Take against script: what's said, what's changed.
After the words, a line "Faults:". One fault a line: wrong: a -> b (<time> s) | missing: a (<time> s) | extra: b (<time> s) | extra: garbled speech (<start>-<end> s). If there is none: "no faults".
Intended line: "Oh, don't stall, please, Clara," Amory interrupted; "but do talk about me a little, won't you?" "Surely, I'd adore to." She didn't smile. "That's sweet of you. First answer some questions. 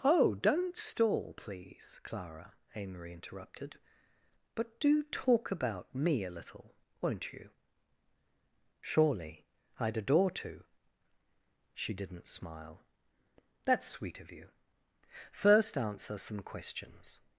"Oh, don't stall, please, Clara," Amory interrupted; "but do talk about me a little, won't you?" "Surely, I'd adore to." She didn't smile. "That's sweet of you. First answer some questions.
Faults:
no faults